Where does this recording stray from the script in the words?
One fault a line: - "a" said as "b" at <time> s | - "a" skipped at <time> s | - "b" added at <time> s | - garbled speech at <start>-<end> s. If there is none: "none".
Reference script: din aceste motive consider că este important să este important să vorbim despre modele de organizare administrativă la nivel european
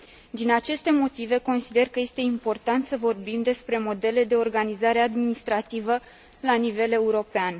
- "este important să" skipped at 3.0 s